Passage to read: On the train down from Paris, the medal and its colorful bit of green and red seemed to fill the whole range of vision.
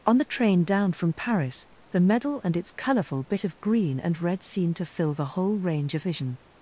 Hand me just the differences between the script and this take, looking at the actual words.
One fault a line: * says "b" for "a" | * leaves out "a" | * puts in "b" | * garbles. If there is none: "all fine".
all fine